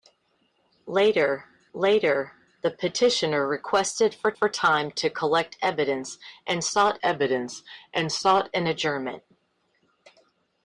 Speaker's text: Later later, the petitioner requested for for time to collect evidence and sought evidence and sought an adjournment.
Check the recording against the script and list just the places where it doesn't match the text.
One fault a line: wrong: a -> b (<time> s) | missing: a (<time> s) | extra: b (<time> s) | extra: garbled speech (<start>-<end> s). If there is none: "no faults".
no faults